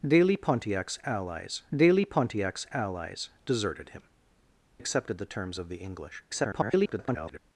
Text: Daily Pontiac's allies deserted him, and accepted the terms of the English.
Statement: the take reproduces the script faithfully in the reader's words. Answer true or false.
false